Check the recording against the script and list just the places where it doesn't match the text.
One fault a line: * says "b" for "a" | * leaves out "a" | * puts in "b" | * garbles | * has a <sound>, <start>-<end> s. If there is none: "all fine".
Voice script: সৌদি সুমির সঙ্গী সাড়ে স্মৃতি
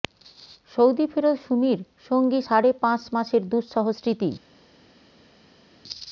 * puts in "ফেরত"
* puts in "পাঁচ মাসের দুঃসহ"